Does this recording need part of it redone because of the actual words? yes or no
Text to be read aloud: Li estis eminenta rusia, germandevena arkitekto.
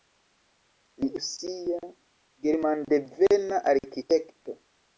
yes